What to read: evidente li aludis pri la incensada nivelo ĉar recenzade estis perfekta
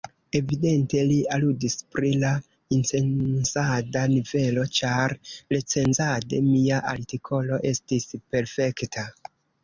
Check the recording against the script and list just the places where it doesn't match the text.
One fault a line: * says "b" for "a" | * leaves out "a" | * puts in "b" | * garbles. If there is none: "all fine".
* puts in "mia artikolo"